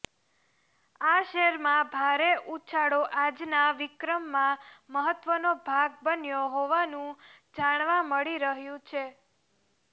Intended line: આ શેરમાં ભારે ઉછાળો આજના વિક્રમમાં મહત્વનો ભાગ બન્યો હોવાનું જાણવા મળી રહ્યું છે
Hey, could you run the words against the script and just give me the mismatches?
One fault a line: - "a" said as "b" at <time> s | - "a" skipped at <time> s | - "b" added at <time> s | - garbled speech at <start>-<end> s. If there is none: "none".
none